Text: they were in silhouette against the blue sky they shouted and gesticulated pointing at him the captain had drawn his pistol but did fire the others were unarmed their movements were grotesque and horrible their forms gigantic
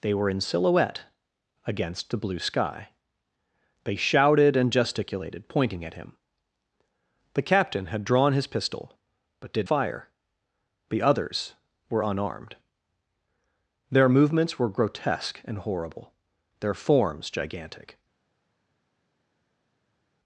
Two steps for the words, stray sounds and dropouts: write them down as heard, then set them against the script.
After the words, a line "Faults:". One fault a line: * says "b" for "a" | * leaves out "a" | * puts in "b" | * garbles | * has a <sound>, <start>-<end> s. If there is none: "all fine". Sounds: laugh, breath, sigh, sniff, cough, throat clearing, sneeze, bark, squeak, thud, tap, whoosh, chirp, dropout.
they were in silhouette against the blue sky they shouted and gesticulated pointing at him the captain had drawn his pistol but did fire the others were unarmed their movements were grotesque and horrible their forms gigantic
Faults:
all fine